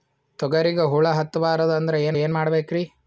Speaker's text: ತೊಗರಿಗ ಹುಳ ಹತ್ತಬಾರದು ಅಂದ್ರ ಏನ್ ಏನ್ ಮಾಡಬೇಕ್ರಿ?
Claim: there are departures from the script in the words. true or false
false